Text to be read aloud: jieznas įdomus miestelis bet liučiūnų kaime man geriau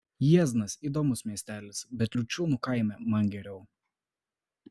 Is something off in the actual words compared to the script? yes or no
no